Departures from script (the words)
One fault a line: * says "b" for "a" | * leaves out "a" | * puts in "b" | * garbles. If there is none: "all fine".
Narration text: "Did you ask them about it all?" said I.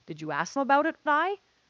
* leaves out "them"
* leaves out "all said"